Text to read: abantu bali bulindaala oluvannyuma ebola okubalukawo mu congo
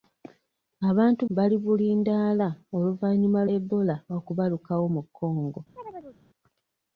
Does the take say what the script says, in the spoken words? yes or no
yes